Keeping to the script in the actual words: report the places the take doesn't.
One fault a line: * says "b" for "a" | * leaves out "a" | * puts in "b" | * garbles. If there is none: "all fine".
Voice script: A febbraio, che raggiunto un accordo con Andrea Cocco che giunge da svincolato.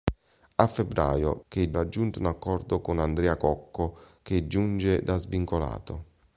all fine